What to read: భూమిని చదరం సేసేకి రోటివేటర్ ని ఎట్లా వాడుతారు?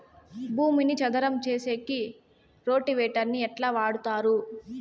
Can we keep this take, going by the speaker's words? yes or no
yes